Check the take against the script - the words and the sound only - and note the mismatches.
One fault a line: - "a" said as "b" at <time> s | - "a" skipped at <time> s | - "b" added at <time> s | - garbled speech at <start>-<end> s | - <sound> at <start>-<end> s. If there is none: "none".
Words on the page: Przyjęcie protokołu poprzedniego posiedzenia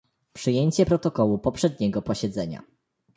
none